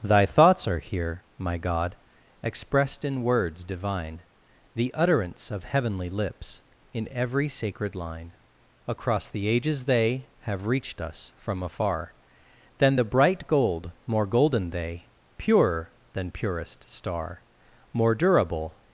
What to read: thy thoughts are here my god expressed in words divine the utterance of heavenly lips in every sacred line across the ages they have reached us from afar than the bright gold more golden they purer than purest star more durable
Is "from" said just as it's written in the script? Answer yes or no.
yes